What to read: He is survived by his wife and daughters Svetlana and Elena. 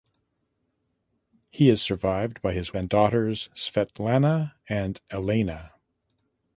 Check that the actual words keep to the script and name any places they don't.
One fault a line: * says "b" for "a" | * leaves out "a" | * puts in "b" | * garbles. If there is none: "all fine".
* leaves out "wife"